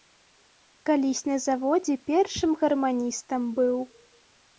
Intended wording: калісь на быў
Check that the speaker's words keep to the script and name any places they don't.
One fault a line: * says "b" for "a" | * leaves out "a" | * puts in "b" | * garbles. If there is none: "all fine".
* puts in "заводзе першым гарманістам"